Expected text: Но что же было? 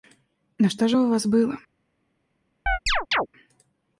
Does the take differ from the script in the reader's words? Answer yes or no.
yes